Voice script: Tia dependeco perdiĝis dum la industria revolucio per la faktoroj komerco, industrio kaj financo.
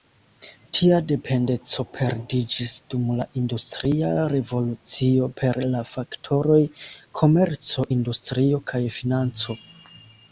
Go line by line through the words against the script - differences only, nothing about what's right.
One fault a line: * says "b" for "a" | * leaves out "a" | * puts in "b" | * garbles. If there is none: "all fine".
all fine